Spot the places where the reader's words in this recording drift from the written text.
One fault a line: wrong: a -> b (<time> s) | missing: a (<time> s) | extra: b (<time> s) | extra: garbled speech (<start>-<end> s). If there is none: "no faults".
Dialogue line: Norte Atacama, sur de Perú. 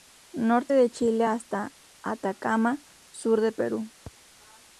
extra: de Chile hasta (0.7 s)